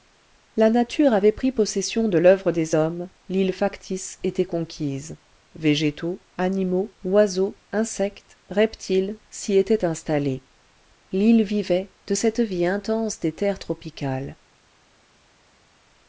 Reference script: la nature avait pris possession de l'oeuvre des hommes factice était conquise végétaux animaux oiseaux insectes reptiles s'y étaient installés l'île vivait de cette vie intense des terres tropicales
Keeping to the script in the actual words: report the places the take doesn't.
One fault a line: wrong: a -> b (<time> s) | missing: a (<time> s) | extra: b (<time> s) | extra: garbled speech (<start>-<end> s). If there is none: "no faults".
extra: l'île (3.3 s)